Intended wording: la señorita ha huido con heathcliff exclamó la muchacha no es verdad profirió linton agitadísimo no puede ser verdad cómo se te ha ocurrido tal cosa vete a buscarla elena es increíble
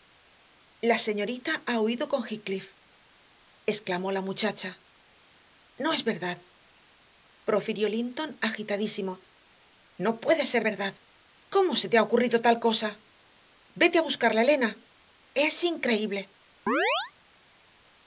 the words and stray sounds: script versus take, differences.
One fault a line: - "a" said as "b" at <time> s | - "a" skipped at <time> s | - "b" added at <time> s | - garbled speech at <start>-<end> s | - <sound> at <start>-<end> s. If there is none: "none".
- chirp at 16.7-17.1 s